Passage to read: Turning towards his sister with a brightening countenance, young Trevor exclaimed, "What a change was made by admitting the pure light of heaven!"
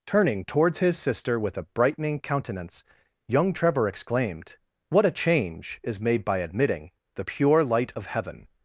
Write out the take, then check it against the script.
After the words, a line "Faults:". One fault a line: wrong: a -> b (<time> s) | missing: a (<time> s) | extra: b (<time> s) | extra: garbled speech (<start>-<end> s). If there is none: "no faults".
Turning towards his sister with a brightening countenance, young Trevor exclaimed, "What a change is made by admitting the pure light of heaven!"
Faults:
wrong: was -> is (5.8 s)